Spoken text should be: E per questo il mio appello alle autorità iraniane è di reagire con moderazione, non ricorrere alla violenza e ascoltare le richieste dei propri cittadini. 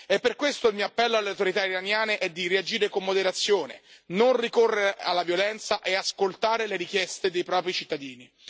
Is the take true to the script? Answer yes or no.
yes